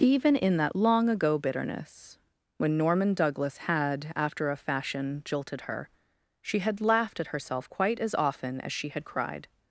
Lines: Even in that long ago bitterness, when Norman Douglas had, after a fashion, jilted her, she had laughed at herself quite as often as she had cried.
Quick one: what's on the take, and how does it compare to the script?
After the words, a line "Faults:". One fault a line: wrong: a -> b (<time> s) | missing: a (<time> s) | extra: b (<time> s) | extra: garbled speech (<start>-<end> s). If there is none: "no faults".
Even in that long ago bitterness, when Norman Douglas had, after a fashion, jilted her, she had laughed at herself quite as often as she had cried.
Faults:
no faults